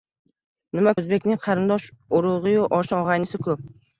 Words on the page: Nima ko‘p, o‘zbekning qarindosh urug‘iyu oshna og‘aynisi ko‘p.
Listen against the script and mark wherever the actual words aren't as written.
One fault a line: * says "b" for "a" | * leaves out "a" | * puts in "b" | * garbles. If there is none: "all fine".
* leaves out "ko‘p"